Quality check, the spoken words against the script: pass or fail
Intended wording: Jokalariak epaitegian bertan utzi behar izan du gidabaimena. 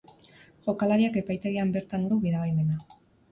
fail